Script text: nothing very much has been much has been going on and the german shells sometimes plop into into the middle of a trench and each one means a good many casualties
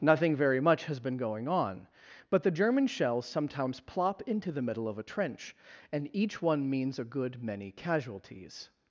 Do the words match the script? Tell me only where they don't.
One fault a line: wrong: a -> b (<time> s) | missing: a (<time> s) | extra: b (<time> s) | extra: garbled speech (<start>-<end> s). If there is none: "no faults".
missing: much has been (1.1 s)
wrong: and -> but (2.3 s)
missing: into (4.5 s)